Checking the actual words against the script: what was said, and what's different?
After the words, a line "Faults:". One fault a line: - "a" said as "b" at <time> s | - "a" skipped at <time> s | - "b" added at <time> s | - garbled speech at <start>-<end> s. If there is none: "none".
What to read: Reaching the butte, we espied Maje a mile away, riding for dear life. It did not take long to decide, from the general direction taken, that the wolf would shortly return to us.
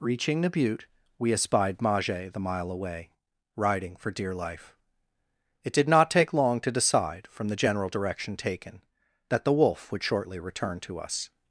Reaching the butte, we espied Maje the mile away, riding for dear life. It did not take long to decide, from the general direction taken, that the wolf would shortly return to us.
Faults:
- "a" said as "the" at 2.3 s